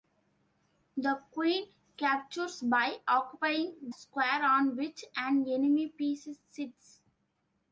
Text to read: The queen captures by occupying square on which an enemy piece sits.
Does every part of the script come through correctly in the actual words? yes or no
yes